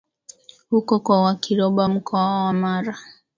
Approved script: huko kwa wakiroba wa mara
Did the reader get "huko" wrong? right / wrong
right